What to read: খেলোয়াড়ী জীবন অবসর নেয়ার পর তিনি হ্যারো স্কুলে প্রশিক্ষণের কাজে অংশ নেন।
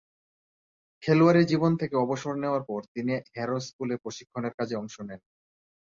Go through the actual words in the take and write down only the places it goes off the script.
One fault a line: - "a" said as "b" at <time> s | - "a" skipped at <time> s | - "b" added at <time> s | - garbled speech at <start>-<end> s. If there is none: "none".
- "থেকে" added at 1.8 s